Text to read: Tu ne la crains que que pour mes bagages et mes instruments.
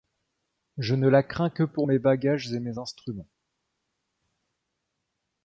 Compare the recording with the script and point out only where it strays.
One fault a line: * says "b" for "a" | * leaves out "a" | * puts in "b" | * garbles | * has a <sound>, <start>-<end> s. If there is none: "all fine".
* says "Je" for "Tu"
* leaves out "que"